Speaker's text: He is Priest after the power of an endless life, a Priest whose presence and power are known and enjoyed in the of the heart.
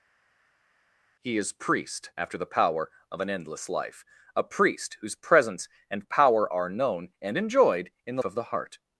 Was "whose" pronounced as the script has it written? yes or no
yes